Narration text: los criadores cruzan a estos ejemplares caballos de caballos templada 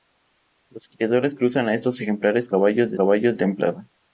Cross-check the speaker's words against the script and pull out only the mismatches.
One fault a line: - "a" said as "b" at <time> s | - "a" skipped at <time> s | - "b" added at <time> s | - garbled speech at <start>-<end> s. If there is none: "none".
none